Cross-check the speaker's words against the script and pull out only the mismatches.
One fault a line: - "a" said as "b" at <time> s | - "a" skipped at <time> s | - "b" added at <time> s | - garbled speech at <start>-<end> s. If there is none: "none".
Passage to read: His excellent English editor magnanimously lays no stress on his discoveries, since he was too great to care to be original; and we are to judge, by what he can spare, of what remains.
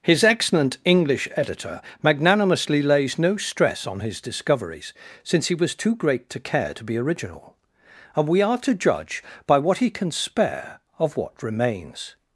none